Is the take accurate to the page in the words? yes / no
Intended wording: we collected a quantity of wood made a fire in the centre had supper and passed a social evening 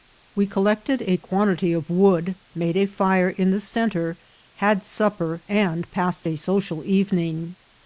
yes